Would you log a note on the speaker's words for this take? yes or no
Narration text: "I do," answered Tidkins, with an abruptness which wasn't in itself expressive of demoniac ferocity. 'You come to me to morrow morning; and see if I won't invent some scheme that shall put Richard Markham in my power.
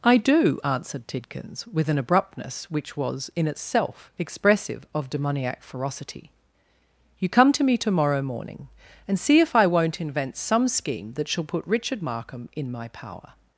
yes